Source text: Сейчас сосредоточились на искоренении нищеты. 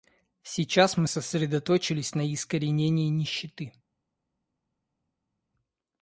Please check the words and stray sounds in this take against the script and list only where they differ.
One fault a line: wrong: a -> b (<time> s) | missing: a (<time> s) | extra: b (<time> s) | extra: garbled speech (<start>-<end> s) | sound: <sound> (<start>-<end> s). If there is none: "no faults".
extra: мы (1.0 s)